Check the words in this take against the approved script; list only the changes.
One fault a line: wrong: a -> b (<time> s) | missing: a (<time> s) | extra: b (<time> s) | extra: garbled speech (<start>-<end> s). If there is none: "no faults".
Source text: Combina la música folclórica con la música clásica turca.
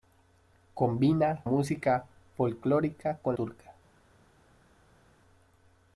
missing: la (1.4 s)
missing: la música clásica (3.4 s)